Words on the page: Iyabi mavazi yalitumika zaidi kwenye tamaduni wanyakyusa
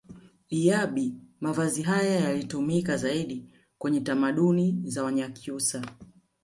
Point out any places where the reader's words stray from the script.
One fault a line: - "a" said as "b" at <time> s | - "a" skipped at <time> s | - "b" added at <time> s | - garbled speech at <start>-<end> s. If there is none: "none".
- "haya" added at 1.8 s
- "za" added at 4.8 s